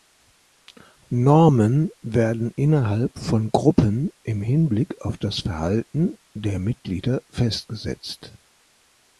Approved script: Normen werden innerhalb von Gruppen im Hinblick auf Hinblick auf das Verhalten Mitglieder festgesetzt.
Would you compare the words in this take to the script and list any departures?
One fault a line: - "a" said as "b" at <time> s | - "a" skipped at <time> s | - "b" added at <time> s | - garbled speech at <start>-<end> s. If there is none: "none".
- "Hinblick auf" skipped at 5.2 s
- "der" added at 6.3 s